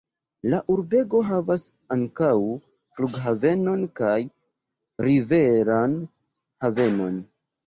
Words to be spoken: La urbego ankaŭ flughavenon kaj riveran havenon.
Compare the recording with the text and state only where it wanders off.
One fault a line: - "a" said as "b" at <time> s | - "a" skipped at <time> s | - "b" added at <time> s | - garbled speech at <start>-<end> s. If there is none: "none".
- "havas" added at 1.3 s